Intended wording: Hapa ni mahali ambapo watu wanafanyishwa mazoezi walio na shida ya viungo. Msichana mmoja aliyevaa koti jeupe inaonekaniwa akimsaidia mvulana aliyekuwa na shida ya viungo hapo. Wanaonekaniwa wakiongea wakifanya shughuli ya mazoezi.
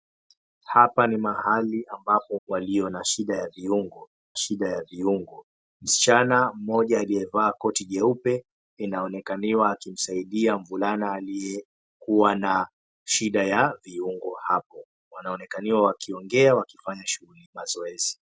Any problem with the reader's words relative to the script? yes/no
yes